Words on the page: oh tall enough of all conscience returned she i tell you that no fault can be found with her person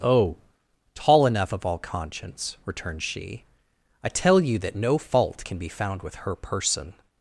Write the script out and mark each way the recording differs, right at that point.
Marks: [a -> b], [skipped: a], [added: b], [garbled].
oh tall enough of all conscience returned she i tell you that no fault can be found with her person